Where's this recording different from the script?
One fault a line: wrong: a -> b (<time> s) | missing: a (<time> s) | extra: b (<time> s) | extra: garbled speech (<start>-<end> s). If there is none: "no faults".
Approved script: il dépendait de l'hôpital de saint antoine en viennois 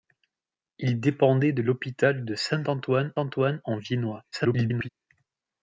extra: antoine (3.1 s)
extra: garbled speech (4.3-4.9 s)